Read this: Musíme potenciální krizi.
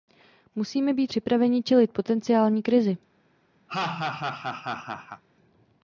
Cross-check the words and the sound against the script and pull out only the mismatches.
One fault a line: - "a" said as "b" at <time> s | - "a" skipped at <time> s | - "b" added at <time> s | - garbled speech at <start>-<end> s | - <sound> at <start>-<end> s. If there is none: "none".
- "být připraveni čelit" added at 0.9 s
- laugh at 3.7-5.2 s